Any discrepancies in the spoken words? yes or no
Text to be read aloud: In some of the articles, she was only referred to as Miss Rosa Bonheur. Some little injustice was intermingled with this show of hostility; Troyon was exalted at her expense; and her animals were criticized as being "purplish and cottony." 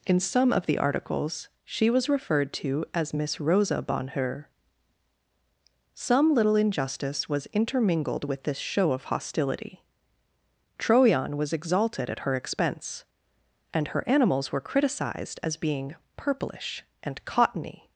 yes